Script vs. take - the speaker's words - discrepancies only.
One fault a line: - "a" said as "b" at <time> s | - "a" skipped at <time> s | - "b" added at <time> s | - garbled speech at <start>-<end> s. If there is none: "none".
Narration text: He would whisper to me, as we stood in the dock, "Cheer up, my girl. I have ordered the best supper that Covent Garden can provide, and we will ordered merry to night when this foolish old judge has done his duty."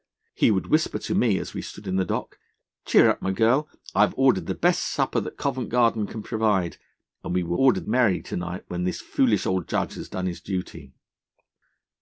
none